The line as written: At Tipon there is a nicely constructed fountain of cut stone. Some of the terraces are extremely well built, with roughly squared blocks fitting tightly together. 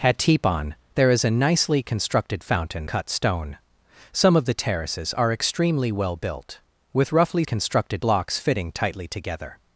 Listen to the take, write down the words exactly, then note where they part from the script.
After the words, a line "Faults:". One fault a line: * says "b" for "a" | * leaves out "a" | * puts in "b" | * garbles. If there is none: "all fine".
At Tipon there is a nicely constructed fountain cut stone. Some of the terraces are extremely well built, with roughly constructed blocks fitting tightly together.
Faults:
* leaves out "of"
* says "constructed" for "squared"